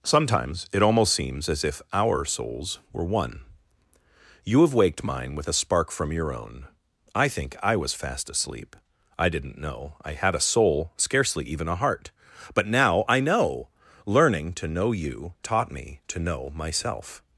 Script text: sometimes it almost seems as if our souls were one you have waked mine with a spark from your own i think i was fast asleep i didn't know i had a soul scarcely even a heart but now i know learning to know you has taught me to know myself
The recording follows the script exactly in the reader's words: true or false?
false